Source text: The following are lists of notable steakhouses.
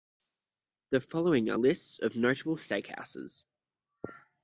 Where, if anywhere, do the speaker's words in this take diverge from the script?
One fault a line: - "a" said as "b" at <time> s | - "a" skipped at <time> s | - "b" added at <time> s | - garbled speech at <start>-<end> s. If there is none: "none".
none